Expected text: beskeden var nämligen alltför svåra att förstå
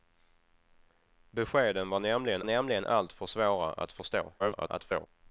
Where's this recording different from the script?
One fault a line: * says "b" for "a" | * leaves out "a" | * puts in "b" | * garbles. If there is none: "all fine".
* puts in "nämligen"
* garbles